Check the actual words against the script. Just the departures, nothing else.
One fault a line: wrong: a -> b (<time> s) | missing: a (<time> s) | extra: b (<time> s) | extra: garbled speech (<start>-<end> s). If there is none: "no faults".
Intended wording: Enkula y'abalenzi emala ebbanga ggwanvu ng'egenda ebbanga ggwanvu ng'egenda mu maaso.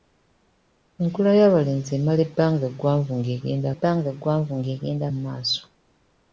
no faults